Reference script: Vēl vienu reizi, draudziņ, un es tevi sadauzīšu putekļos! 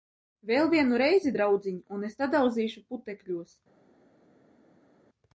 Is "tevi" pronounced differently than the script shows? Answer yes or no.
yes